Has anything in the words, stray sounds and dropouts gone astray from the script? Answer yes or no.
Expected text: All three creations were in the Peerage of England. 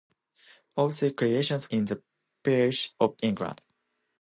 yes